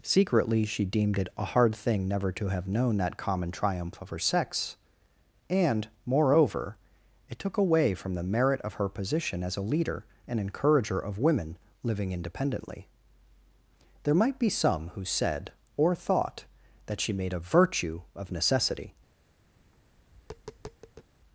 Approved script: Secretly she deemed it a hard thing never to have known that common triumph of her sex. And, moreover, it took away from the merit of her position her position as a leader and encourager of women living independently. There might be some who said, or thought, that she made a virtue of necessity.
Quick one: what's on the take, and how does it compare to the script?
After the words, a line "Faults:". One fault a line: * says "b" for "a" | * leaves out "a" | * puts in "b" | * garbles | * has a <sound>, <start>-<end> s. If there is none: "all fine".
Secretly she deemed it a hard thing never to have known that common triumph of her sex. And, moreover, it took away from the merit of her position as a leader and encourager of women living independently. There might be some who said, or thought, that she made a virtue of necessity.
Faults:
* leaves out "her position"
* has a tap, 19.6-21.1 s